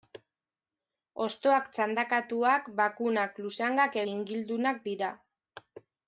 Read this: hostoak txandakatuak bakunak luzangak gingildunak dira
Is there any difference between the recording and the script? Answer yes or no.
no